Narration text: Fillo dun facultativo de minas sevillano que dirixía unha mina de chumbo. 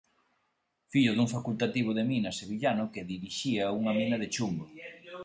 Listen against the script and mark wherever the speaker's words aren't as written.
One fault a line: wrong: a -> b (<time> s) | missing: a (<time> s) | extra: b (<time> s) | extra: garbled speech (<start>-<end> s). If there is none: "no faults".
no faults